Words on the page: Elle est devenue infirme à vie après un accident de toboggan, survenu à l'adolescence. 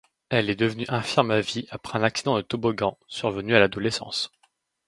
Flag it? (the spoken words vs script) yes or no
no